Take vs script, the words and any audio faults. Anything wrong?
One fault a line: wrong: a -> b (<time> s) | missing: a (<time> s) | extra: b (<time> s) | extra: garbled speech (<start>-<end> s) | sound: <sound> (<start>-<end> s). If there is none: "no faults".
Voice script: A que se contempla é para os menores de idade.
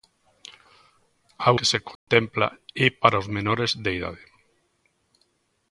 sound: dropout (2.0-2.1 s)